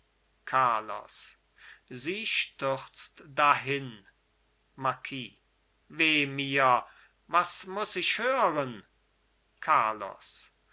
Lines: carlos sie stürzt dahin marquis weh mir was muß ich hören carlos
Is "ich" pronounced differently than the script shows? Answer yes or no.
no